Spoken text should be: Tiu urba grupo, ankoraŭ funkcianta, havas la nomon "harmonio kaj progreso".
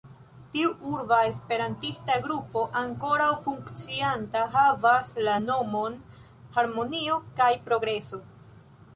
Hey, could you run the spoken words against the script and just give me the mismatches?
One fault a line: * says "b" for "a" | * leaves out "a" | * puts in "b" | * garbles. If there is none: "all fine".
* puts in "esperantista"